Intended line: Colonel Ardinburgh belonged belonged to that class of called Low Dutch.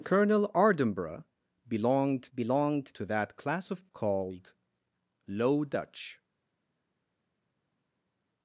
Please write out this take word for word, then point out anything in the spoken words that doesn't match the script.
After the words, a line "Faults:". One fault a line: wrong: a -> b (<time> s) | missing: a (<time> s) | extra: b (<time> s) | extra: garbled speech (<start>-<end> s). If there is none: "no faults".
Colonel Ardinburgh belonged belonged to that class of called Low Dutch.
Faults:
no faults